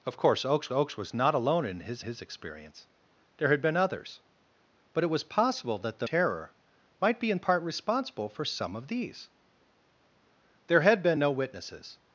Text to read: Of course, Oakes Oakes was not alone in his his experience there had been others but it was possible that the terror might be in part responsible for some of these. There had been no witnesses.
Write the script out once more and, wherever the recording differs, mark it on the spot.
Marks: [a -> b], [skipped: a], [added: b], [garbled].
Of course, Oakes Oakes was not alone in his his experience there had been others but it was possible that the terror might be in part responsible for some of these. There had been no witnesses.